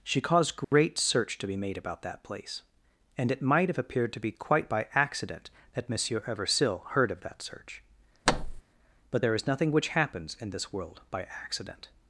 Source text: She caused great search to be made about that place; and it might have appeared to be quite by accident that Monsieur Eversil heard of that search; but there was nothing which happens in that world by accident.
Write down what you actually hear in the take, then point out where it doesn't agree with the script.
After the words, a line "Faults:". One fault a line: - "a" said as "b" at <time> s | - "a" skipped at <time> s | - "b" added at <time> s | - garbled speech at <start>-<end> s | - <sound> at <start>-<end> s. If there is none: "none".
She caused great search to be made about that place; and it might have appeared to be quite by accident that Monsieur Eversil heard of that search; but there is nothing which happens in this world by accident.
Faults:
- dropout at 0.6-0.7 s
- thud at 8.3-8.6 s
- "was" said as "is" at 9.3 s
- "that" said as "this" at 10.5 s